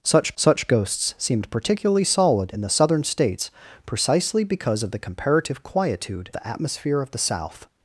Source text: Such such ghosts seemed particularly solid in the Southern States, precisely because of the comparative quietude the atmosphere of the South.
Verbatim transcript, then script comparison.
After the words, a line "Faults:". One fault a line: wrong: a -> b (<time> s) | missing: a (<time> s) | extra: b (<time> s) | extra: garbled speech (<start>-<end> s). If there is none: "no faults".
Such such ghosts seemed particularly solid in the Southern States, precisely because of the comparative quietude the atmosphere of the South.
Faults:
no faults